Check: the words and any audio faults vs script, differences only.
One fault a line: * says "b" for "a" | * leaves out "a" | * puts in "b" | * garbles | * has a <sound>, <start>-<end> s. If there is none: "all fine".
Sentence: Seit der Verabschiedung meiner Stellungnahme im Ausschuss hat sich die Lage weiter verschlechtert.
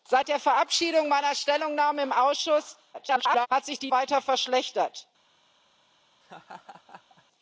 * garbles
* leaves out "Lage"
* has a laugh, 6.2-7.2 s